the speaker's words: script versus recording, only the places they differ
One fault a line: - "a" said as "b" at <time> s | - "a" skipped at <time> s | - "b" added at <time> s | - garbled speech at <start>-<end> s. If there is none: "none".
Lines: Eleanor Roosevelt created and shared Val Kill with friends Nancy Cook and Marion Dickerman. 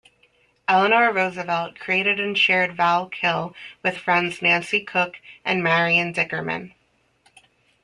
none